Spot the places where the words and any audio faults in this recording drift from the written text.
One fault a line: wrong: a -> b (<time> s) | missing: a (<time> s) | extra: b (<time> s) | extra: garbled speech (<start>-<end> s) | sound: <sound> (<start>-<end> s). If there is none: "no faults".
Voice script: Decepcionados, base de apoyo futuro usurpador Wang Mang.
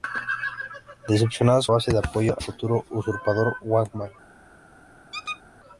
sound: squeak (5.1-5.4 s)